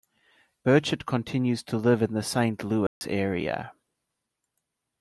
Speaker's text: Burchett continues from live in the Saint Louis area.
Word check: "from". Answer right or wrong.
wrong